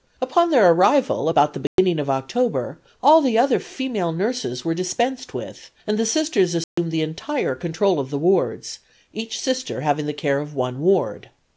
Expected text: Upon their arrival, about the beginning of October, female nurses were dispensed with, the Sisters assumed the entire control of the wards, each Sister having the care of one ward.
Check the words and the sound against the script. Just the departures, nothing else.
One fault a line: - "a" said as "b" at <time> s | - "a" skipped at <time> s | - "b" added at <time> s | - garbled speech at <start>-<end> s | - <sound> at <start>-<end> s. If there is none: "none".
- dropout at 1.7-1.8 s
- "all the other" added at 3.0 s
- "and" added at 5.8 s
- dropout at 6.6-6.8 s